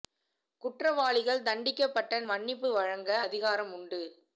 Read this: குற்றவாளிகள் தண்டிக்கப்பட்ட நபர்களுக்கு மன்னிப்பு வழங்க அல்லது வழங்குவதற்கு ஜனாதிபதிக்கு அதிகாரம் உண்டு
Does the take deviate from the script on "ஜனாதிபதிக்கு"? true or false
true